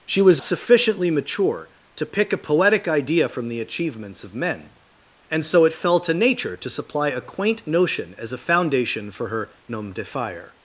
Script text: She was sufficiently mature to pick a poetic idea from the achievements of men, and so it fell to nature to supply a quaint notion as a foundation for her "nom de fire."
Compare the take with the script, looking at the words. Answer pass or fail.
pass